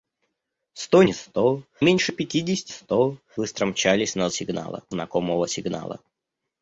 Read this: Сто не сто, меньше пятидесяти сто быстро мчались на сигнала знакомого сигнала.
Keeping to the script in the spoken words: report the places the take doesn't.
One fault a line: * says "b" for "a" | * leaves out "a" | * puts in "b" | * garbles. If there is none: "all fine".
all fine